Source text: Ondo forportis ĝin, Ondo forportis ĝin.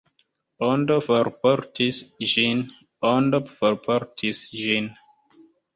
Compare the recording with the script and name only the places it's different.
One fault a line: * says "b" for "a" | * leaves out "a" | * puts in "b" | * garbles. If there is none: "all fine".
all fine